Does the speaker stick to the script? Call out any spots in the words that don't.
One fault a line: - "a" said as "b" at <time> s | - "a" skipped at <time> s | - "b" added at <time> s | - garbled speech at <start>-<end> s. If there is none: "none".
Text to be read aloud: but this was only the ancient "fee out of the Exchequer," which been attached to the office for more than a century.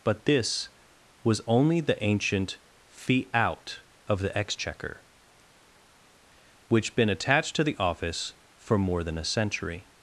none